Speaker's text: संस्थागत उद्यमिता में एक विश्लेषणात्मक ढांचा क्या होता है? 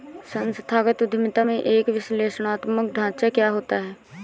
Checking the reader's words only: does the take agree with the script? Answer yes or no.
yes